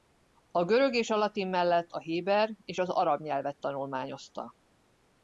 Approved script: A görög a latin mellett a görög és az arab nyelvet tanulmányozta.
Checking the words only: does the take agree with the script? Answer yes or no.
no